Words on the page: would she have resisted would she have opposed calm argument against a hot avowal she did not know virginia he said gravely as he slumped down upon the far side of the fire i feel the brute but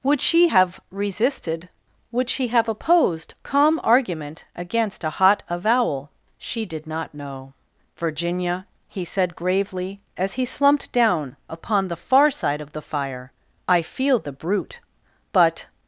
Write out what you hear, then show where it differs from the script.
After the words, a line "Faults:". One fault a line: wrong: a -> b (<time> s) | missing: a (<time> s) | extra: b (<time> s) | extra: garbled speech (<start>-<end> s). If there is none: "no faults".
would she have resisted would she have opposed calm argument against a hot avowal she did not know virginia he said gravely as he slumped down upon the far side of the fire i feel the brute but
Faults:
no faults